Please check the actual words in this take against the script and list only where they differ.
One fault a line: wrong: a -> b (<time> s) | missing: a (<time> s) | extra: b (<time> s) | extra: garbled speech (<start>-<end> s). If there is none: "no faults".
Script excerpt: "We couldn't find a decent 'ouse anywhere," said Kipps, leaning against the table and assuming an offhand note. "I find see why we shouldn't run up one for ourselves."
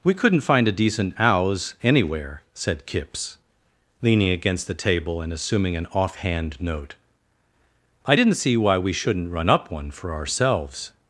wrong: find -> didn't (8.1 s)